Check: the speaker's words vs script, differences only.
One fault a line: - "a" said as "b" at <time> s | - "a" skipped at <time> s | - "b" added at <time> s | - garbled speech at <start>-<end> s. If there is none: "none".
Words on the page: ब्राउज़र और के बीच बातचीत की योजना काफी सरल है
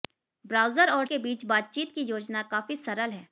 none